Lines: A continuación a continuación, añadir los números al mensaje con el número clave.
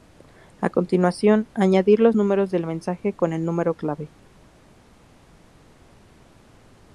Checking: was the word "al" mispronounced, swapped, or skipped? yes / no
yes